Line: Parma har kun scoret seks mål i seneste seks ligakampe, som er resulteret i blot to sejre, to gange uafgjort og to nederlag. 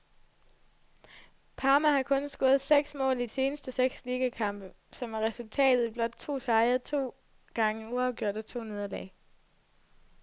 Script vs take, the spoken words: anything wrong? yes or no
no